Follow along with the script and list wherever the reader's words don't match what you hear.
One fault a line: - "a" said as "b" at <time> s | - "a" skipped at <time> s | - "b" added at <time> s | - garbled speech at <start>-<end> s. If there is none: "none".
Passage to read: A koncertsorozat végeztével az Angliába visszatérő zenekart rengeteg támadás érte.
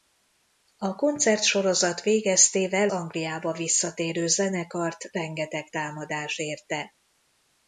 - "az" skipped at 2.9 s